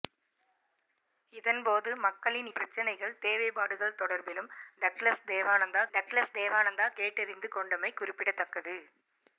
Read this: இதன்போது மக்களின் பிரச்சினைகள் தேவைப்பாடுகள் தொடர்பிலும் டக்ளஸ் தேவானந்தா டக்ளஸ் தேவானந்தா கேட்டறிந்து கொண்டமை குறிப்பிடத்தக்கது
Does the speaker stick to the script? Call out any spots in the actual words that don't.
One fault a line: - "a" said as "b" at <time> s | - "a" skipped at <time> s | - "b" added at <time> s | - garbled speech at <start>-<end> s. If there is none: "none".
none